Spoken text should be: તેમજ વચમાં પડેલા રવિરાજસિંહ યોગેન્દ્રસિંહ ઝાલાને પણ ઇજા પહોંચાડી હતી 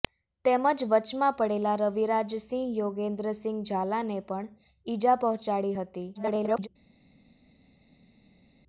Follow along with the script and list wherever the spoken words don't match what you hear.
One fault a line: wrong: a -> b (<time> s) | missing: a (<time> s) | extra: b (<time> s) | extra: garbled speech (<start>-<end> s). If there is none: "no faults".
extra: garbled speech (6.1-6.7 s)